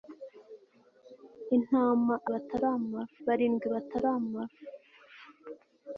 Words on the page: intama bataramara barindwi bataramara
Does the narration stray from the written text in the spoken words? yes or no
no